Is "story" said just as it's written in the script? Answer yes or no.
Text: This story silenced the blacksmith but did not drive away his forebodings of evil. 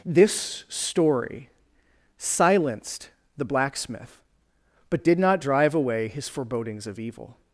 yes